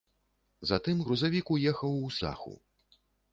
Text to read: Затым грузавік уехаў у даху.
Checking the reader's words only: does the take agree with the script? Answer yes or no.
yes